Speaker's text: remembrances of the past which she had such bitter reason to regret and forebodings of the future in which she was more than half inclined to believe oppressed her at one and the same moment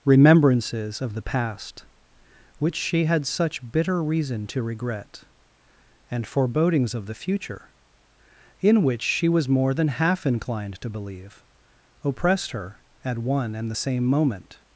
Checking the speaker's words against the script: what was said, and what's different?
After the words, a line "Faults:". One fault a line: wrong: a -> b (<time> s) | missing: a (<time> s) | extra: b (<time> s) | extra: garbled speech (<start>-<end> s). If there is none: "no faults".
remembrances of the past which she had such bitter reason to regret and forebodings of the future in which she was more than half inclined to believe oppressed her at one and the same moment
Faults:
no faults